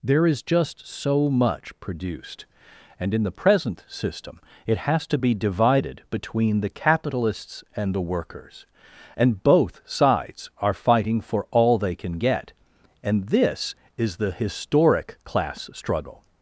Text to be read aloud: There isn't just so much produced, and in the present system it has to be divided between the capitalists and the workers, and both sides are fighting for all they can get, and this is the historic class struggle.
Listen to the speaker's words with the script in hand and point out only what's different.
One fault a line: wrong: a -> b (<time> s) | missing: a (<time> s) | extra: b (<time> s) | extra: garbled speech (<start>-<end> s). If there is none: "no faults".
wrong: isn't -> is (0.2 s)